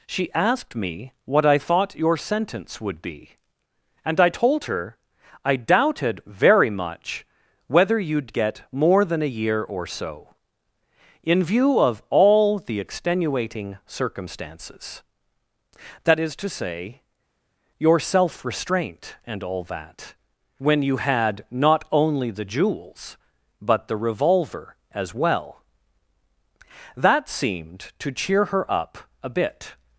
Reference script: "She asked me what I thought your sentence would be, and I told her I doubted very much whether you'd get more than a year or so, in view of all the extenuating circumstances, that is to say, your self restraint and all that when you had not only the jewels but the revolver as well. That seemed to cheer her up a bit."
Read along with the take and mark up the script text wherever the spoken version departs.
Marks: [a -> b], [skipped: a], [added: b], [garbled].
"She asked me what I thought your sentence would be, and I told her I doubted very much whether you'd get more than a year or so, in view of all the extenuating circumstances, that is to say, your self restraint and all that when you had not only the jewels but the revolver as well. That seemed to cheer her up a bit."